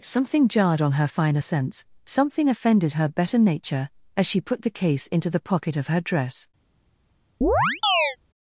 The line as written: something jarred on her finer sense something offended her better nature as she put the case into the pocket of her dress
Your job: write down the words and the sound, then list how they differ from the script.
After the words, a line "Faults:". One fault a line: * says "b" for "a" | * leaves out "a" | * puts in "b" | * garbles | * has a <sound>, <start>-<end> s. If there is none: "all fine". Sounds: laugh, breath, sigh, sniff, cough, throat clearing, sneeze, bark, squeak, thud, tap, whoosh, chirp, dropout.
something jarred on her finer sense something offended her better nature as she put the case into the pocket of her dress
Faults:
* has a chirp, 7.4-8.2 s